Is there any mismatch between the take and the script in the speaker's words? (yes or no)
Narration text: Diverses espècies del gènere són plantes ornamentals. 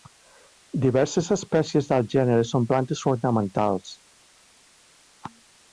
no